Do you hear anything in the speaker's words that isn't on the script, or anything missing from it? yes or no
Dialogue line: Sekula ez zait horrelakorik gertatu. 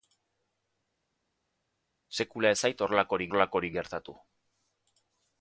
yes